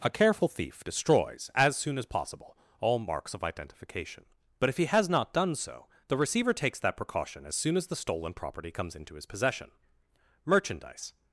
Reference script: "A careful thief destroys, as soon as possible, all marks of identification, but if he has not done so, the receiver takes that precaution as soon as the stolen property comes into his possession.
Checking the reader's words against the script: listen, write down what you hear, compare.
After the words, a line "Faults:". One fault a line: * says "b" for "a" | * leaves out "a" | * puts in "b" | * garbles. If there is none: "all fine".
"A careful thief destroys, as soon as possible, all marks of identification, but if he has not done so, the receiver takes that precaution as soon as the stolen property comes into his possession. Merchandise
Faults:
* puts in "Merchandise"